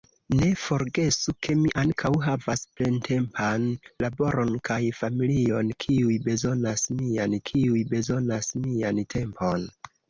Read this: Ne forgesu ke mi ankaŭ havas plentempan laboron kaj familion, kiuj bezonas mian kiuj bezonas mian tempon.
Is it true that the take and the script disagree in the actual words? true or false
false